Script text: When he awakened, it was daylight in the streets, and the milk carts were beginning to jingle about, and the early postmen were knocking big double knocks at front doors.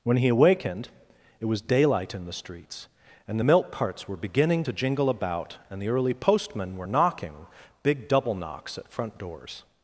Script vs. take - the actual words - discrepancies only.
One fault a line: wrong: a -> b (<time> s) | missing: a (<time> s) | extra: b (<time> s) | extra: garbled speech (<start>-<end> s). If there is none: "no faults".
no faults